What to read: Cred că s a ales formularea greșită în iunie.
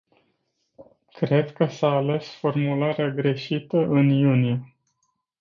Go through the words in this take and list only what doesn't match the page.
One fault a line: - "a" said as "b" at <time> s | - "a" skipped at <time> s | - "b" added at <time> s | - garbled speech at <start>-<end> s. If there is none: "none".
none